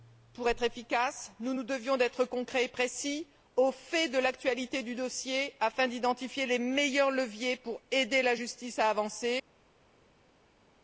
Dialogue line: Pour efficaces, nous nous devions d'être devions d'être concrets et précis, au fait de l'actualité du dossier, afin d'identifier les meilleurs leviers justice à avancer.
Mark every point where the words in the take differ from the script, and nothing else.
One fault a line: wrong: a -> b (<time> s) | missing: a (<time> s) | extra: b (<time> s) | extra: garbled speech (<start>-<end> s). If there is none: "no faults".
extra: être (0.5 s)
missing: devions d'être (2.2 s)
extra: pour aider la (7.6 s)